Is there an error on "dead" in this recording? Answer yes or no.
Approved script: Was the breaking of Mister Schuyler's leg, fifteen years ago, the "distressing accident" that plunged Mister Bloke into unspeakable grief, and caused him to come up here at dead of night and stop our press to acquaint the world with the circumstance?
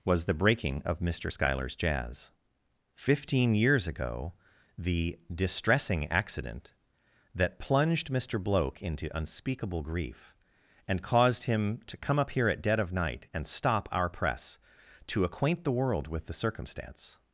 no